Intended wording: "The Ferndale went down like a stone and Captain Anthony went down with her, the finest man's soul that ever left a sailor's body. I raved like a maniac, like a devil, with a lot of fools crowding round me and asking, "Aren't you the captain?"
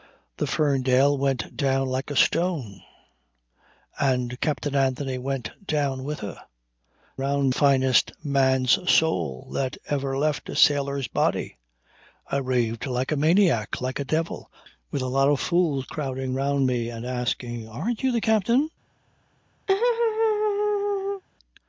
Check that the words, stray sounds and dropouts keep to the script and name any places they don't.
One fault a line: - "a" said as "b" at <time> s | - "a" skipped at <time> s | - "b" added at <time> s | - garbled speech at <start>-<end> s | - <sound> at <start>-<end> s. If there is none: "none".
- "the" said as "round" at 7.2 s
- laugh at 19.7-21.2 s